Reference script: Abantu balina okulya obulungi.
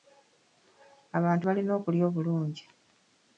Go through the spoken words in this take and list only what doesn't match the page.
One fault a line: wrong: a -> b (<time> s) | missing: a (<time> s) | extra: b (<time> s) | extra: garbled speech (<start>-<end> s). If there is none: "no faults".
no faults